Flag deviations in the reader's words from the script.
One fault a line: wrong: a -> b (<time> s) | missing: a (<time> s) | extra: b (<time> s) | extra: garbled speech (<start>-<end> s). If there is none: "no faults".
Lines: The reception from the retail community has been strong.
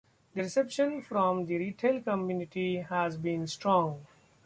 no faults